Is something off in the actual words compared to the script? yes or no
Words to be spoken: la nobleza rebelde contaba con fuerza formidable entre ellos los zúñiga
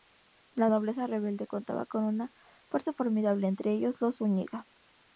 yes